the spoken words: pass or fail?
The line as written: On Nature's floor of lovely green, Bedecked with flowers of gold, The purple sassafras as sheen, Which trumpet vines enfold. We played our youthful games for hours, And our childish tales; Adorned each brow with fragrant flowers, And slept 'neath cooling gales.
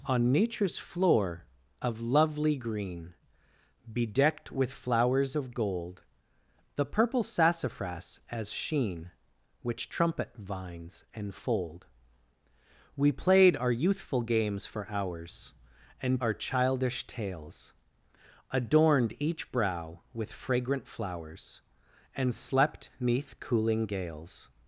pass